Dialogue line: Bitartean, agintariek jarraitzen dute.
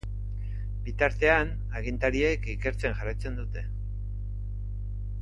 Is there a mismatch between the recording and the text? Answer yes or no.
yes